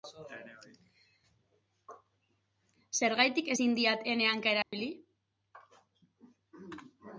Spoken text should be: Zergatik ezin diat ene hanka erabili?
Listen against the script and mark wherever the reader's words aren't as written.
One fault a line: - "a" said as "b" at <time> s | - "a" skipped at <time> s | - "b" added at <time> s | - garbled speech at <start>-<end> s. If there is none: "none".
none